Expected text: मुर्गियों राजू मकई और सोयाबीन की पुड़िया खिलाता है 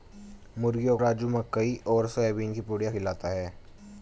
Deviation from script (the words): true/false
false